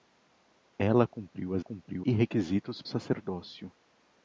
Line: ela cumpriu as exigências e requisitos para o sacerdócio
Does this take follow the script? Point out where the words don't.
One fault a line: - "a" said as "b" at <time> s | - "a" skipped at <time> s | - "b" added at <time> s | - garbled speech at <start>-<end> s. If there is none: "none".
- "exigências" said as "cumpriu" at 1.6 s
- "para" skipped at 2.8 s